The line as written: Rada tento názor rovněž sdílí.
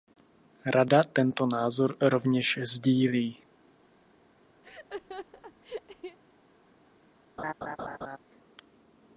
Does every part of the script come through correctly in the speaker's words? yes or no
yes